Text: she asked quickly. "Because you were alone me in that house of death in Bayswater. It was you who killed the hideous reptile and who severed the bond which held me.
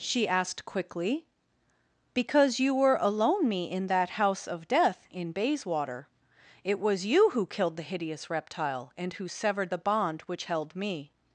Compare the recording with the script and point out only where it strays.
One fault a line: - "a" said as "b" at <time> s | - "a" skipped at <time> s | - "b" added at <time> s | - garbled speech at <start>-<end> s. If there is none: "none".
none